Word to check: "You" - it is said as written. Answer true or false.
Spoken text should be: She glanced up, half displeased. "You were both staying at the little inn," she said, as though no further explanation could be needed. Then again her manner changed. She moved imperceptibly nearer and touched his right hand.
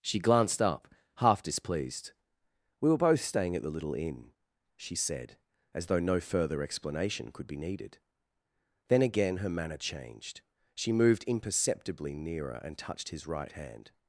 false